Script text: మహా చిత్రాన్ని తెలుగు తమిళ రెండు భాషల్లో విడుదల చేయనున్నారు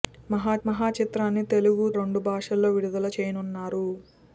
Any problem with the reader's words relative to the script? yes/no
yes